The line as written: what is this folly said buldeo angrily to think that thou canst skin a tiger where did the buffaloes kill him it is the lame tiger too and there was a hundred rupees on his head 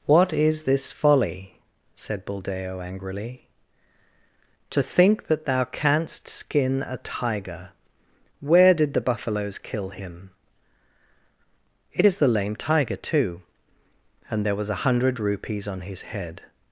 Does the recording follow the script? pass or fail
pass